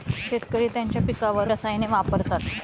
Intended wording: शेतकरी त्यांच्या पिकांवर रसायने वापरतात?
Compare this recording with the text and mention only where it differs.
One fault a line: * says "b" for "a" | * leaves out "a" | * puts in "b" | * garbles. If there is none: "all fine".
all fine